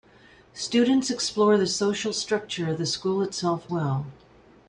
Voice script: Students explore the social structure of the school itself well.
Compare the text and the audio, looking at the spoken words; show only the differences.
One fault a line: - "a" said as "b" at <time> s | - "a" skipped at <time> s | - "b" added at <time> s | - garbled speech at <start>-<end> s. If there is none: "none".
none